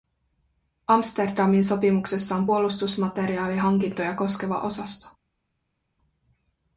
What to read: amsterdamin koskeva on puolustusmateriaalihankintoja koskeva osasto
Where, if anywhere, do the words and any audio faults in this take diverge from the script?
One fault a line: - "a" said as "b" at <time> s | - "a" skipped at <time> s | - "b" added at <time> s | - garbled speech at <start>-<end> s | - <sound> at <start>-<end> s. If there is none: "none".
- "koskeva" said as "sopimuksessa" at 1.6 s